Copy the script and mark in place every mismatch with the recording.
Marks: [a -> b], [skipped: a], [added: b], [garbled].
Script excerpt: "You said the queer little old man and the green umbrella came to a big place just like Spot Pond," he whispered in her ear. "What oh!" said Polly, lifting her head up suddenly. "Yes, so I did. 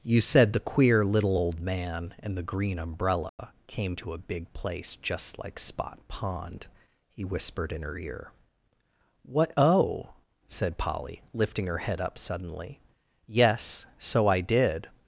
"You said the queer little old man and the green umbrella came to a big place just like Spot Pond," he whispered in her ear. "What oh!" said Polly, lifting her head up suddenly. "Yes, so I did.